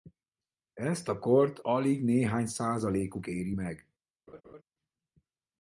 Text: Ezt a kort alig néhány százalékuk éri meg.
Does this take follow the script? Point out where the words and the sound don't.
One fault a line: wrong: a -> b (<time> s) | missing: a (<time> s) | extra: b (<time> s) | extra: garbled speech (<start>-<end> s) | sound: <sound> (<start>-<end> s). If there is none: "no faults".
sound: laugh (4.3-4.6 s)